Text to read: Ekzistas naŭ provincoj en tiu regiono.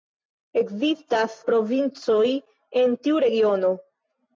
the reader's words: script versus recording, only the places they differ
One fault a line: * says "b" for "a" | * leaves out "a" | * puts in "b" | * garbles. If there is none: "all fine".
* leaves out "naŭ"